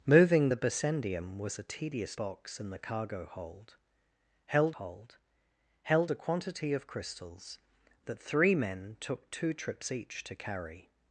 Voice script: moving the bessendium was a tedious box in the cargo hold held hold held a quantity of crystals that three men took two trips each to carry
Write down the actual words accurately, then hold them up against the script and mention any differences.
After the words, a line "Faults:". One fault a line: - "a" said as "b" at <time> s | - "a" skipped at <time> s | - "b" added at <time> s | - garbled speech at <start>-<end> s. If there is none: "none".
moving the bessendium was a tedious box in the cargo hold held hold held a quantity of crystals that three men took two trips each to carry
Faults:
none